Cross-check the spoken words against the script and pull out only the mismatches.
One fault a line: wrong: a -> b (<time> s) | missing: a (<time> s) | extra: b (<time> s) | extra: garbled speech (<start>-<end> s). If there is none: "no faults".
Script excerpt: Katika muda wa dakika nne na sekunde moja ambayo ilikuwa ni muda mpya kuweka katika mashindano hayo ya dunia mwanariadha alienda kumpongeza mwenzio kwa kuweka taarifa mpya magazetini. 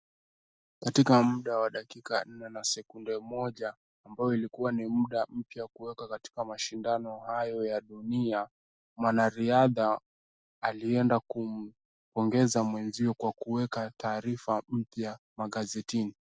no faults